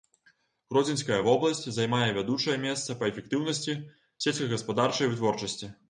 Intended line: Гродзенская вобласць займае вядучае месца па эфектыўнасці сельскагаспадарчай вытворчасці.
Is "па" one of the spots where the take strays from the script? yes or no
no